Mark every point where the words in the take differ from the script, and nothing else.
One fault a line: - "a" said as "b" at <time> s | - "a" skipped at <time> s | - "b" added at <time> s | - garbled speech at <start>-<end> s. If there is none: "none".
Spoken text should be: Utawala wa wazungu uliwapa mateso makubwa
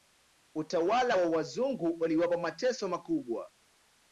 none